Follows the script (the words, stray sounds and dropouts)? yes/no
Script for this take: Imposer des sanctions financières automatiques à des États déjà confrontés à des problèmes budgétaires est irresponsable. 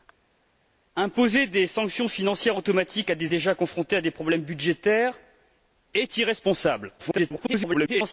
no